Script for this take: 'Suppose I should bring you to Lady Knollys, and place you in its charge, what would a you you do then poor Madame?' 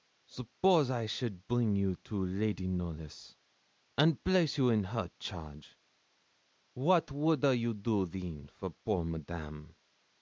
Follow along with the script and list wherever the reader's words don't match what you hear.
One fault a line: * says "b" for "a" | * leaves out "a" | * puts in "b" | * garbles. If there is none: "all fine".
* says "her" for "its"
* leaves out "you"
* puts in "for"